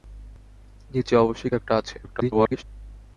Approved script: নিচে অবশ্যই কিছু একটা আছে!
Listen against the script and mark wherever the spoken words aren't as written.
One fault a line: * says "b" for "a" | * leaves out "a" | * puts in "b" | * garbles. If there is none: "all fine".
* leaves out "কিছু"
* garbles